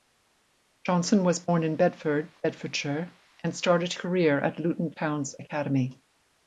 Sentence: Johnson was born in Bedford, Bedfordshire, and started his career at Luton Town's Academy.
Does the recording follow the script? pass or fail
fail